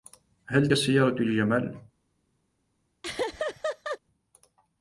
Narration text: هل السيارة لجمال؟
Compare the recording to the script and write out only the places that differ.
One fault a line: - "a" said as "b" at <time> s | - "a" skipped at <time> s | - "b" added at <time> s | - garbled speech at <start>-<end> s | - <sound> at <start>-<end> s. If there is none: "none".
- laugh at 3.0-4.0 s